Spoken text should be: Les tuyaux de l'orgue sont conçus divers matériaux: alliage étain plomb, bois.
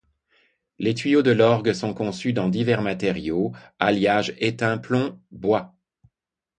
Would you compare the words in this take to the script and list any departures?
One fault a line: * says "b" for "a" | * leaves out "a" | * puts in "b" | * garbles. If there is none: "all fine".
* puts in "dans"